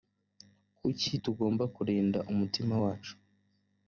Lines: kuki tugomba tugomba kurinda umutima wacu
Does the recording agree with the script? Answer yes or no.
no